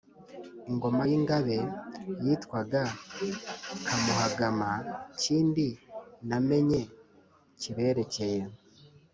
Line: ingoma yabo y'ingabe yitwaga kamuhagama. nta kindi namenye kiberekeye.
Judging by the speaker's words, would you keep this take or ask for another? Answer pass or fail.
fail